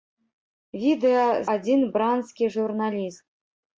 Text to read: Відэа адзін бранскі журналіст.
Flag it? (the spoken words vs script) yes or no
no